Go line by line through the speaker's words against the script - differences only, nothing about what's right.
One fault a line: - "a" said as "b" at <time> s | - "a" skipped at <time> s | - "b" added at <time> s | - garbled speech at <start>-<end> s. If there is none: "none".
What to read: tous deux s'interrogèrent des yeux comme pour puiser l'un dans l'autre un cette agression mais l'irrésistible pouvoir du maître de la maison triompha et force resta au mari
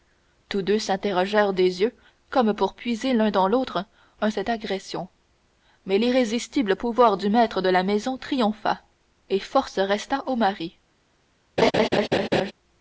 none